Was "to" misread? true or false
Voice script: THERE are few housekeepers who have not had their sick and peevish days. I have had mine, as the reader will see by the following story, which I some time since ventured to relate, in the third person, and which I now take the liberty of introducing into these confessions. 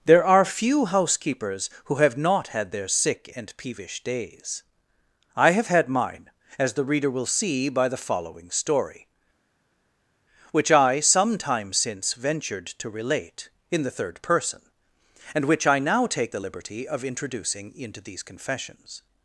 false